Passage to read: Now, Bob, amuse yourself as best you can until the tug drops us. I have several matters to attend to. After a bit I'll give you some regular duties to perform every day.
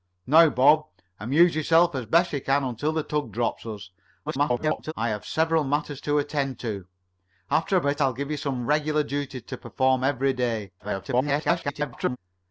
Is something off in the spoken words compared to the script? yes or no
yes